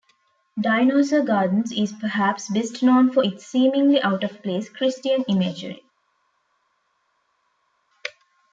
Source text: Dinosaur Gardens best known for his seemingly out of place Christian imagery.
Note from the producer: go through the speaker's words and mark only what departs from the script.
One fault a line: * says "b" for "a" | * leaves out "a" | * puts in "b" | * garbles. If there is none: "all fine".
* puts in "is perhaps"
* says "its" for "his"